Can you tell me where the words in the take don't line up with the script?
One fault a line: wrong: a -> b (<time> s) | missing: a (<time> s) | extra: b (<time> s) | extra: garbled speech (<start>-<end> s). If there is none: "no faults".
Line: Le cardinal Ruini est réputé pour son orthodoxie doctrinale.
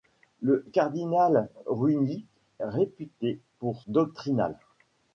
missing: est (2.2 s)
missing: son orthodoxie (3.8 s)